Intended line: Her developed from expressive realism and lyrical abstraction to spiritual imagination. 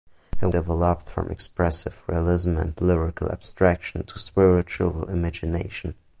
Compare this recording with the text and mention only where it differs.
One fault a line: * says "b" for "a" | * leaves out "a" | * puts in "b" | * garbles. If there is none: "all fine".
all fine